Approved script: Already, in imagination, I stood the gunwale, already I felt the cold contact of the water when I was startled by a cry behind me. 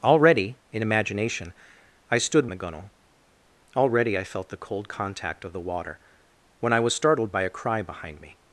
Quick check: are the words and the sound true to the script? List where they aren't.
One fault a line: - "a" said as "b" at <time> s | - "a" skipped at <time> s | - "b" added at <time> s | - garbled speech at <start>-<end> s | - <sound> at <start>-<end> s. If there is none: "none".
none